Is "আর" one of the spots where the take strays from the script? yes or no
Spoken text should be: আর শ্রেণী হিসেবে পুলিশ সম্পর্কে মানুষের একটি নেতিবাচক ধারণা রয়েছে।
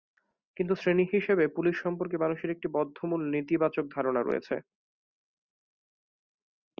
yes